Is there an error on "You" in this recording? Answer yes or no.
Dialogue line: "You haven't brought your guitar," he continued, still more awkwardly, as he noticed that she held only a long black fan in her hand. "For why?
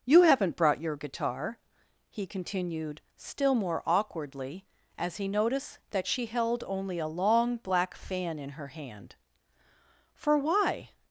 no